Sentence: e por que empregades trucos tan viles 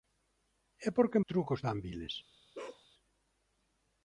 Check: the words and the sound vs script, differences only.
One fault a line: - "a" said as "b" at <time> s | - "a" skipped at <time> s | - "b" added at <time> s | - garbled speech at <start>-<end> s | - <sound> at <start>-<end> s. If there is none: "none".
- "empregades" skipped at 1.2 s
- bark at 2.5-2.9 s